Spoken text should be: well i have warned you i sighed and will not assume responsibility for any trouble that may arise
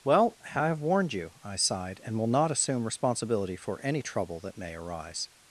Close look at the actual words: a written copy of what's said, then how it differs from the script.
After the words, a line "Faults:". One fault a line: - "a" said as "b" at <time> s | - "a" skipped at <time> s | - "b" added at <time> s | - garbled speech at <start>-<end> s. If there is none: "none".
well i have warned you i sighed and will not assume responsibility for any trouble that may arise
Faults:
none